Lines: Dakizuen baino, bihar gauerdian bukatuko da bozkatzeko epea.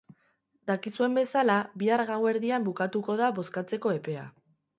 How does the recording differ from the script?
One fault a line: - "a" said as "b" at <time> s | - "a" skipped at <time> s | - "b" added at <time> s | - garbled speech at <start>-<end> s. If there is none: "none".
- "baino" said as "bezala" at 1.2 s